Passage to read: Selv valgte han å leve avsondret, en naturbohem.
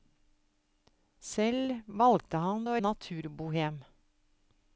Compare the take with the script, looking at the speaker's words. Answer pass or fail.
fail